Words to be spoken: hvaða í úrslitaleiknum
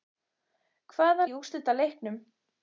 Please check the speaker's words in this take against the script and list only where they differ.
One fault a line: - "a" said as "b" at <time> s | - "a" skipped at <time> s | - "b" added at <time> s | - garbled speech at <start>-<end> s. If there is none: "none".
none